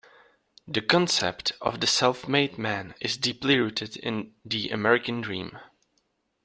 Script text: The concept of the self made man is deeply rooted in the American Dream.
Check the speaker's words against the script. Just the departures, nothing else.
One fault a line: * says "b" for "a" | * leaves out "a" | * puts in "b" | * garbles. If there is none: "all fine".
all fine